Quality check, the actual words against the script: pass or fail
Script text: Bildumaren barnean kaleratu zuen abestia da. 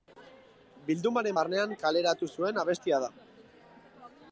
pass